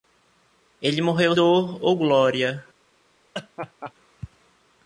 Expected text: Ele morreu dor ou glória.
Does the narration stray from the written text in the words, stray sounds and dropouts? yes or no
yes